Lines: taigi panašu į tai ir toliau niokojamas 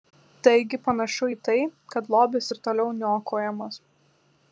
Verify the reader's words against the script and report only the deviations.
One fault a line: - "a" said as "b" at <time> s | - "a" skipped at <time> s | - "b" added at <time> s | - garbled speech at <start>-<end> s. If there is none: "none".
- "kad lobis" added at 1.9 s